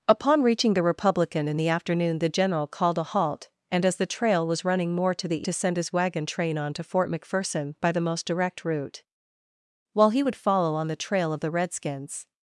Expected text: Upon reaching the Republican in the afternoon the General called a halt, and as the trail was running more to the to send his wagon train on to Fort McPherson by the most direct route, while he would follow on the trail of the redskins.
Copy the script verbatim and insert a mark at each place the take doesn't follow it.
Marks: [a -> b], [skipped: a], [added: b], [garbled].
Upon reaching the Republican in the afternoon the General called a halt, and as the trail was running more to the to send his wagon train on to Fort McPherson by the most direct route, while he would follow on the trail of the redskins.